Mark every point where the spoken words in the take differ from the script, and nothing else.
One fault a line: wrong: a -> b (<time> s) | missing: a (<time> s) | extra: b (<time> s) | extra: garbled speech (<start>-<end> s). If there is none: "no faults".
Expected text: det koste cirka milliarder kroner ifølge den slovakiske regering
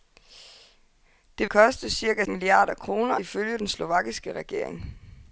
no faults